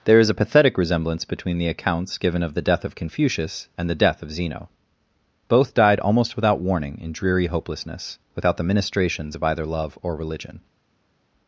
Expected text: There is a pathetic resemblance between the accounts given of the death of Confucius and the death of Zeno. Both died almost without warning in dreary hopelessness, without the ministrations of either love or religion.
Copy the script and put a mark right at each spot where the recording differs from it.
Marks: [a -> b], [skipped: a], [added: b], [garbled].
There is a pathetic resemblance between the accounts given of the death of Confucius and the death of Zeno. Both died almost without warning in dreary hopelessness, without the ministrations of either love or religion.